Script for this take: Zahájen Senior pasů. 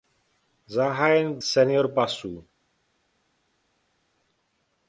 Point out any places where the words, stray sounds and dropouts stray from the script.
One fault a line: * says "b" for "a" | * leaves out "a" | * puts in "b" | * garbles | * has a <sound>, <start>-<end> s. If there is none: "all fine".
all fine